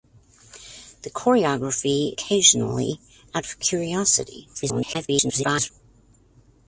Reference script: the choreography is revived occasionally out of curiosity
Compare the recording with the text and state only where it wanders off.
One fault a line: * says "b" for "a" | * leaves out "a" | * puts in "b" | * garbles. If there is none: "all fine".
* leaves out "is revived"
* garbles